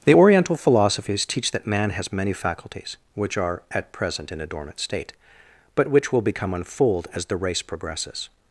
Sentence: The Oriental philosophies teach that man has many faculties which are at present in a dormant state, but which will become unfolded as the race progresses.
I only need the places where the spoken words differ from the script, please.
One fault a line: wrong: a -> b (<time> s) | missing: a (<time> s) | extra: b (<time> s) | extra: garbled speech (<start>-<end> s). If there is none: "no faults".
wrong: unfolded -> unfold (6.5 s)